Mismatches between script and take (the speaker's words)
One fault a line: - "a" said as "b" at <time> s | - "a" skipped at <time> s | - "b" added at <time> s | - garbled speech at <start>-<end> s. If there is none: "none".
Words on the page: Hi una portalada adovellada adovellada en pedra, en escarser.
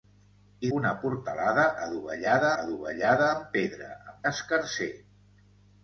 none